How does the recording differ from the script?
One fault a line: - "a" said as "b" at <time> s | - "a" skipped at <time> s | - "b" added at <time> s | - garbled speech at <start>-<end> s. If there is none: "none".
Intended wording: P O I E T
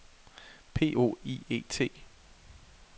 none